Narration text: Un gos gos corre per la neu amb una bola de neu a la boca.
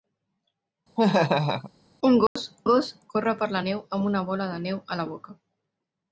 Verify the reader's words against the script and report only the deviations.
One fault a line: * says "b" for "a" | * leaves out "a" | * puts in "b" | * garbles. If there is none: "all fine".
all fine